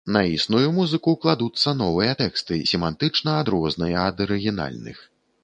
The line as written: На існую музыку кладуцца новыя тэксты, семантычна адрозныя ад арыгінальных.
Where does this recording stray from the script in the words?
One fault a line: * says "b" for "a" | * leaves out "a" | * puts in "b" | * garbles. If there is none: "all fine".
all fine